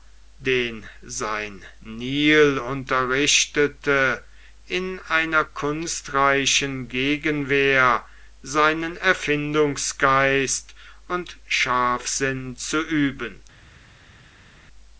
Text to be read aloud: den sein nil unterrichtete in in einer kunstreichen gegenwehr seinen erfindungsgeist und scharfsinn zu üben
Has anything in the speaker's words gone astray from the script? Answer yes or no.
yes